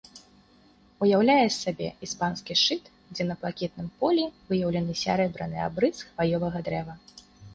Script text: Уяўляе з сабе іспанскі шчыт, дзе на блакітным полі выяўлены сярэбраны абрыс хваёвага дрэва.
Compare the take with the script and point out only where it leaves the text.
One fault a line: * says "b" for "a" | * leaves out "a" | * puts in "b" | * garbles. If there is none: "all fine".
all fine